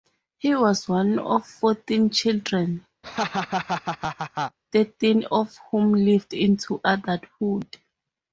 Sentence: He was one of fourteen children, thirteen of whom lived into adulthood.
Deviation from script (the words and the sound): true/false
true